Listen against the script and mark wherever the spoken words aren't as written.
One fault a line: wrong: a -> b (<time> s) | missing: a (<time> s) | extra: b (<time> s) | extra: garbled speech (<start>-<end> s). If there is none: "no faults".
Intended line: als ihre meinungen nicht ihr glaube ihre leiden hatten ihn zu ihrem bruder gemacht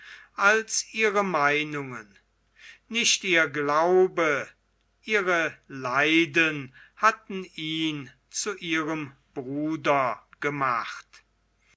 no faults